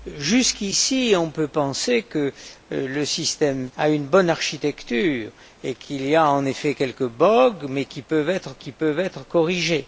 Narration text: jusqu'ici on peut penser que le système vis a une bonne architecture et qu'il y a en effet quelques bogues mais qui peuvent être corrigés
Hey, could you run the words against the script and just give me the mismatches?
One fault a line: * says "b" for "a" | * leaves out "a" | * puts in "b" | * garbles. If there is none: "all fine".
* leaves out "vis"
* puts in "qui peuvent être"